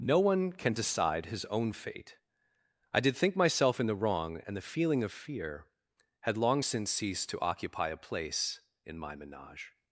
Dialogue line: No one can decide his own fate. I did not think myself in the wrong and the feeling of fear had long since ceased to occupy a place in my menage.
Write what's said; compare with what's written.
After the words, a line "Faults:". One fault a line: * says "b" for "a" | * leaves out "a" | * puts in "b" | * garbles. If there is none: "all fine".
No one can decide his own fate. I did think myself in the wrong and the feeling of fear had long since ceased to occupy a place in my menage.
Faults:
* leaves out "not"